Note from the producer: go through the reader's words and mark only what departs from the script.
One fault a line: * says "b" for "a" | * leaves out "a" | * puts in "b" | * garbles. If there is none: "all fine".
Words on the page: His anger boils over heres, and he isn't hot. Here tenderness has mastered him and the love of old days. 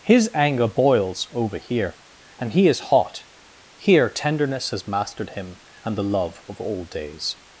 * says "here" for "heres"
* says "is" for "isn't"